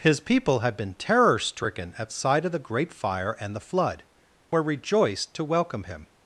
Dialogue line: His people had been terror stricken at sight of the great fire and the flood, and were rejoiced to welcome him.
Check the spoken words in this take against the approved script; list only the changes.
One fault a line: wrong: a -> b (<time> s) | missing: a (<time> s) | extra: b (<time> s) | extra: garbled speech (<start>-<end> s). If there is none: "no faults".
missing: and (4.0 s)